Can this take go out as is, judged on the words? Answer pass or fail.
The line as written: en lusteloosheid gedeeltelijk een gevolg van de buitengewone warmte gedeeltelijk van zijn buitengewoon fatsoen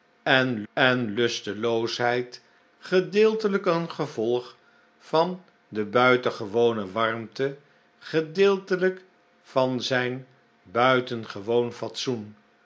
fail